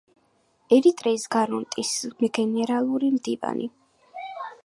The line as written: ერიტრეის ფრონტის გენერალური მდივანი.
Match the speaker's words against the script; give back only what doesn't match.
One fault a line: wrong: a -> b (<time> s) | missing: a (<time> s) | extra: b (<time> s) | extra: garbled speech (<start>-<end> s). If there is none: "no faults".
no faults